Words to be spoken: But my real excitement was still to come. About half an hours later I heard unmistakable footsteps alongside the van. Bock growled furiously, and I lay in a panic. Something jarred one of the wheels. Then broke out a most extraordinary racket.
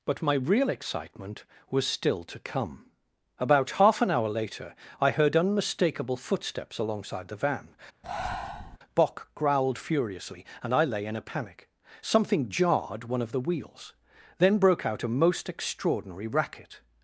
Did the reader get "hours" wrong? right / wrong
wrong